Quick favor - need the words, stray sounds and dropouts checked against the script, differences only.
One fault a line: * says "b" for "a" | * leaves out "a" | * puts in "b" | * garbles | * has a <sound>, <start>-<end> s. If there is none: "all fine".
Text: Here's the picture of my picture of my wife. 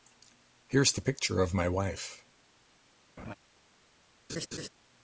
* leaves out "picture of my"
* has a laugh, 3.2-3.3 s
* has a laugh, 4.3-4.7 s